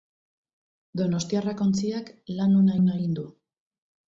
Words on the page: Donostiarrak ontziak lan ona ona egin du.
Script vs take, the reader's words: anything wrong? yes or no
no